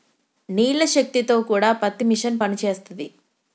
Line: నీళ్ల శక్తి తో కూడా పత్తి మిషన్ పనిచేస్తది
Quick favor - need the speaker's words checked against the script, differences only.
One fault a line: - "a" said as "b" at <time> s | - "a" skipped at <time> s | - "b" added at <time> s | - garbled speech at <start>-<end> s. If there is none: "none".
none